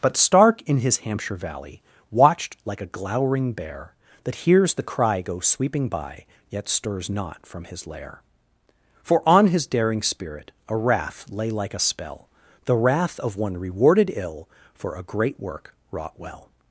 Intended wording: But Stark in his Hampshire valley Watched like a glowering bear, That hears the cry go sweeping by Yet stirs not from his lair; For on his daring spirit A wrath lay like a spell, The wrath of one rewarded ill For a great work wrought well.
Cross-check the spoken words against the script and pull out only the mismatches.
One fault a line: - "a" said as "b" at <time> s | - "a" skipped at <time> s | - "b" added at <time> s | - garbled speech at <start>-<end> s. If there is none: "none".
none